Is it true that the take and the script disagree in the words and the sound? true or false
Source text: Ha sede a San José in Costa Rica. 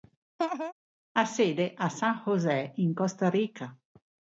true